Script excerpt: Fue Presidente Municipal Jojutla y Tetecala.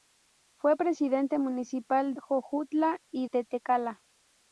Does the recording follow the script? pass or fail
pass